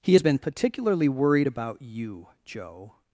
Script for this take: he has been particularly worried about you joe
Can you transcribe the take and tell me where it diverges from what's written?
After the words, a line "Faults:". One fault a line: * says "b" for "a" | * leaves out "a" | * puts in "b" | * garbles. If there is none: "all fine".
he has been particularly worried about you joe
Faults:
all fine